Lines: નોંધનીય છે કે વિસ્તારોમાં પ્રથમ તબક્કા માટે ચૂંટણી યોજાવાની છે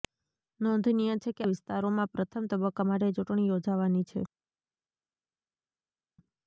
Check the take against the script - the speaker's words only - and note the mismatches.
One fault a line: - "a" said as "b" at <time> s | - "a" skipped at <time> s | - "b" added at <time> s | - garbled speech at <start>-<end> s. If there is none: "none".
none